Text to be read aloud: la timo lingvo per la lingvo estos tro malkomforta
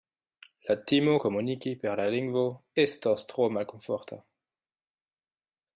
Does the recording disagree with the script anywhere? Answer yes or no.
yes